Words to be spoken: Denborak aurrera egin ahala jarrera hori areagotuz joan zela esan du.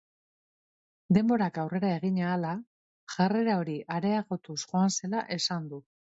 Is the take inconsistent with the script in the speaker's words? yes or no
no